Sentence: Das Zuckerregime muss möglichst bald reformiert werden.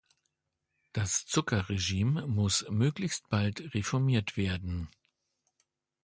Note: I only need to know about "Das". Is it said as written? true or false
true